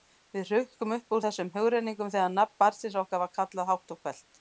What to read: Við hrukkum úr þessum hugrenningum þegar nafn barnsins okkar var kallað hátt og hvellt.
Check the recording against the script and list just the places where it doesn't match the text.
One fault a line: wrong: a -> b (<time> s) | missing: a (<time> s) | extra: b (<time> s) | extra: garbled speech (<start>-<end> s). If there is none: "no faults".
extra: upp (0.9 s)